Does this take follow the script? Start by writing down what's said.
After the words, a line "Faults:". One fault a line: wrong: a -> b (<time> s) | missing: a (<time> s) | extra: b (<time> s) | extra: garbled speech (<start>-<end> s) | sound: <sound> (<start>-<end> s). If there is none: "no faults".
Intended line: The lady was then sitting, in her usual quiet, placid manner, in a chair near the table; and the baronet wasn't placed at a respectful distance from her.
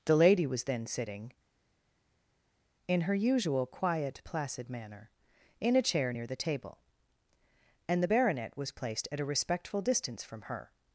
The lady was then sitting, in her usual quiet, placid manner, in a chair near the table; and the baronet was placed at a respectful distance from her.
Faults:
wrong: wasn't -> was (8.6 s)